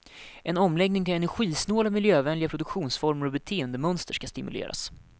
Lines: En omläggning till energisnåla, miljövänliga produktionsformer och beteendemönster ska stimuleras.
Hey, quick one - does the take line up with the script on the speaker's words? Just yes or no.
yes